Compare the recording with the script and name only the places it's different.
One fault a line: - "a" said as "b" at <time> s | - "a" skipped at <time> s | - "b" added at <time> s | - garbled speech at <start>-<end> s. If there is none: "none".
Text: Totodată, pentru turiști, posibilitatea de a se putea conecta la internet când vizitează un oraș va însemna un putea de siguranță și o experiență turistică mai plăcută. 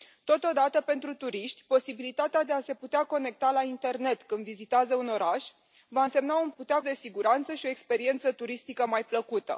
none